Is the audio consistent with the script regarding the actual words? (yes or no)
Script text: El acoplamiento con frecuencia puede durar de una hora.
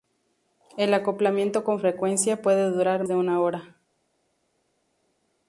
yes